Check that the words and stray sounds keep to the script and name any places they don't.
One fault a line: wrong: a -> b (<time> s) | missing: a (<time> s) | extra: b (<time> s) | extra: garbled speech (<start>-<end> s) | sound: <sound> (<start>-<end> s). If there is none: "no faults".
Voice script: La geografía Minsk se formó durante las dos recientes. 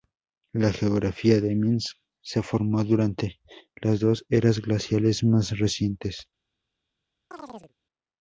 extra: de (1.4 s)
extra: eras glaciales más (4.3 s)
sound: chirp (7.3-7.7 s)